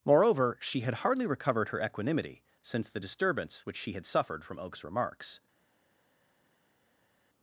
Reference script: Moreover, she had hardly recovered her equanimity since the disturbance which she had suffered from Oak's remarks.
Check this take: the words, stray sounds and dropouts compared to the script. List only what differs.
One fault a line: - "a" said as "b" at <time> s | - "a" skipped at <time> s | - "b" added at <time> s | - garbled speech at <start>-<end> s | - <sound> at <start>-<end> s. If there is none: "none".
none